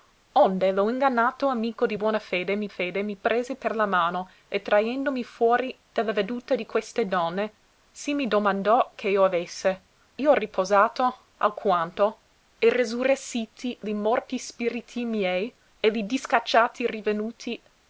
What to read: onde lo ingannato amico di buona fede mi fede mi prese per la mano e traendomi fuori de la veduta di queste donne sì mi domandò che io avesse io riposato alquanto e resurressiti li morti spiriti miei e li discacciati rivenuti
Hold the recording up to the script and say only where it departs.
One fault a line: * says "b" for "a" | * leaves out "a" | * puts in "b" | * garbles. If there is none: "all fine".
all fine